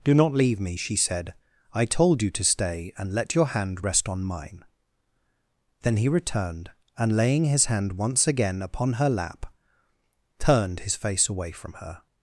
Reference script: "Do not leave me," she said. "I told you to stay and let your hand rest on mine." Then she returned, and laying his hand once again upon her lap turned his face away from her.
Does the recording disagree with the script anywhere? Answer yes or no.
yes